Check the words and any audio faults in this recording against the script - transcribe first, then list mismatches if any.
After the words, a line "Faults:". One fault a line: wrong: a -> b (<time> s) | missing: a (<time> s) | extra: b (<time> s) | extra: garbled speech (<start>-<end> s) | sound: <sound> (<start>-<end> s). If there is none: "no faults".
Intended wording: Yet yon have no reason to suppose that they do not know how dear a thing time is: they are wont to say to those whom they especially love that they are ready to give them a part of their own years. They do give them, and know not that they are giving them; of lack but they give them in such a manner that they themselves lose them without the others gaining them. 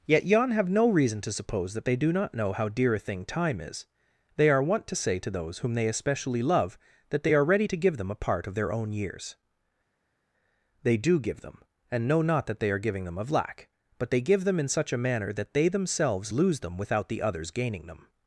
Yet yon have no reason to suppose that they do not know how dear a thing time is: they are wont to say to those whom they especially love that they are ready to give them a part of their own years. They do give them, and know not that they are giving them; of lack but they give them in such a manner that they themselves lose them without the others gaining them.
Faults:
no faults